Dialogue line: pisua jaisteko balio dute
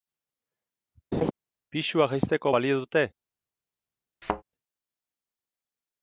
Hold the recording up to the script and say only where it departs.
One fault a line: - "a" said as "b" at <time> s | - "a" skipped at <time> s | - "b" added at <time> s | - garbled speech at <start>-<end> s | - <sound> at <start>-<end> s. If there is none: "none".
- laugh at 1.1-1.3 s
- thud at 4.2-4.4 s